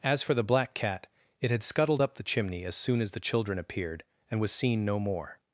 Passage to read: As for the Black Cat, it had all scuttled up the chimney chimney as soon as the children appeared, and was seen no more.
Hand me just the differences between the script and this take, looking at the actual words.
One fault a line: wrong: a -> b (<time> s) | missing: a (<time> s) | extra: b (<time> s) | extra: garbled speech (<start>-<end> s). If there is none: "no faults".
missing: all (1.6 s)
missing: chimney (2.6 s)